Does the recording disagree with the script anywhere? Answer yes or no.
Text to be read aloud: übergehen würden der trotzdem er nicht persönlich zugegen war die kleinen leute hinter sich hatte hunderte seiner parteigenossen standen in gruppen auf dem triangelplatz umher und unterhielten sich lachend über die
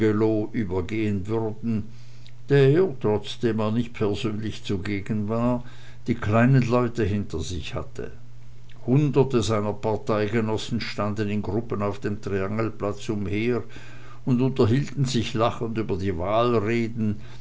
no